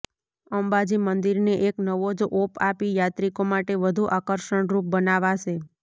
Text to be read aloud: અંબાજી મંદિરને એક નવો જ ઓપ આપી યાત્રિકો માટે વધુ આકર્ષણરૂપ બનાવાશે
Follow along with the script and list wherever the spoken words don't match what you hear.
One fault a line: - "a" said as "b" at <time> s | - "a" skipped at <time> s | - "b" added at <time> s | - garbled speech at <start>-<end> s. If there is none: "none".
none